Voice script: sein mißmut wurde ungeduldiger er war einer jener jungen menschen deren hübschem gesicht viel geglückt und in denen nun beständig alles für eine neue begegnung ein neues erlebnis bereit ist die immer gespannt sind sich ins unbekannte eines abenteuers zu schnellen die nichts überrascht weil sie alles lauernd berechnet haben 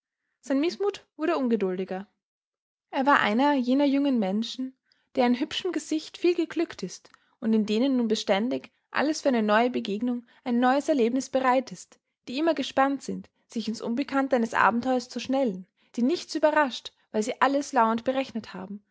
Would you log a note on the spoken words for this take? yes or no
yes